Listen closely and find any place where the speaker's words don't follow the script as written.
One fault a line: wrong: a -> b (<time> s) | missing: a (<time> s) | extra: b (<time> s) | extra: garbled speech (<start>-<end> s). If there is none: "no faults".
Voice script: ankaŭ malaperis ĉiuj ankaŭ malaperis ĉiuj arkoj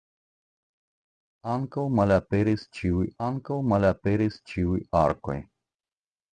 no faults